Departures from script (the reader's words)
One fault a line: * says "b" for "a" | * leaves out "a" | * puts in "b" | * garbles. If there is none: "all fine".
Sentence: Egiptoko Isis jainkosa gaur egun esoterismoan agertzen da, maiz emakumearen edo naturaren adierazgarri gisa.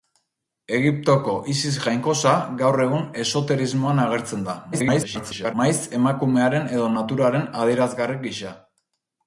* garbles